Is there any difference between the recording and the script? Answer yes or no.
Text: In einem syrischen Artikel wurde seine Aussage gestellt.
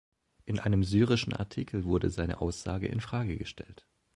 yes